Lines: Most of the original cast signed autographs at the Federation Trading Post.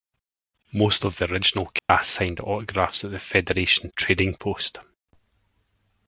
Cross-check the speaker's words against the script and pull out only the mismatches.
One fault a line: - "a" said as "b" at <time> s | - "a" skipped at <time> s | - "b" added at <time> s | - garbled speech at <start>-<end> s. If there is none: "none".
none